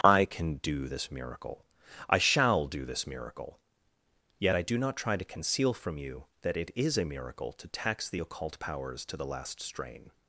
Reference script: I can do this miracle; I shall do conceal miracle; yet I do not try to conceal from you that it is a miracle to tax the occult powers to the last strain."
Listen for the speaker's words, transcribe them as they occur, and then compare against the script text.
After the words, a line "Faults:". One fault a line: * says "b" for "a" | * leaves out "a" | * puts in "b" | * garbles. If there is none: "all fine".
I can do this miracle; I shall do this miracle; yet I do not try to conceal from you that it is a miracle to tax the occult powers to the last strain."
Faults:
* says "this" for "conceal"